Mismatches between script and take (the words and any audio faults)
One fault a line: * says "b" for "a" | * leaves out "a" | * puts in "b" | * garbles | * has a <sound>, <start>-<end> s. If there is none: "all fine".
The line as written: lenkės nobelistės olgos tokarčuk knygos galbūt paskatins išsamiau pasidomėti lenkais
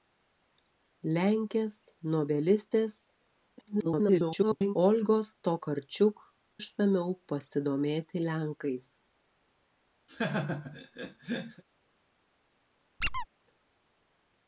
* garbles
* leaves out "knygos galbūt paskatins"
* has a laugh, 10.1-11.6 s
* has a squeak, 13.0-13.3 s